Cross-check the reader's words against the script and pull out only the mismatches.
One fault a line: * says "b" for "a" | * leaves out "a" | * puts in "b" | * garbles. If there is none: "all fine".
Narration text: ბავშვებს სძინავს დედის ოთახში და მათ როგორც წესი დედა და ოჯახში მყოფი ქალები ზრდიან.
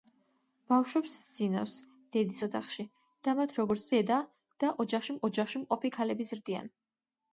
* leaves out "წესი"
* puts in "ოჯახში"